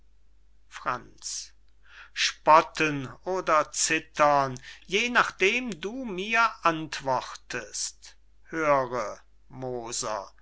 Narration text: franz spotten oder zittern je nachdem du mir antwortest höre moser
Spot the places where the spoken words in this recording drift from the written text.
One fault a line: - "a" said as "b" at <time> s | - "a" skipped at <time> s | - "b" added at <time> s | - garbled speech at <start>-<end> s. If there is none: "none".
none